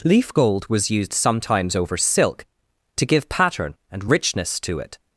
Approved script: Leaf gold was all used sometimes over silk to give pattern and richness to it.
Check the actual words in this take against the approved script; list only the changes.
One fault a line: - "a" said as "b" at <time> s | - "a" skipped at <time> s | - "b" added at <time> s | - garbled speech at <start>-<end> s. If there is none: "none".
- "all" skipped at 0.9 s